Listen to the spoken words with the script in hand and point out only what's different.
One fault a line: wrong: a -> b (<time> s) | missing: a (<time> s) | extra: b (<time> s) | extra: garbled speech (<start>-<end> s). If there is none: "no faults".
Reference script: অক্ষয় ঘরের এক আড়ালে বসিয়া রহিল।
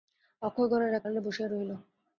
no faults